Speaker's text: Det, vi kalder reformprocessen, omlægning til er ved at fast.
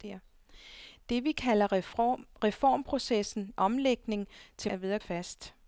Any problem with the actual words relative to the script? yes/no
no